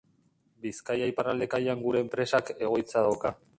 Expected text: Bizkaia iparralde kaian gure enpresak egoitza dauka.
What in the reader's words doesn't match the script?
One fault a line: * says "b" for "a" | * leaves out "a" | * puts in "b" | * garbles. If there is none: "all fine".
all fine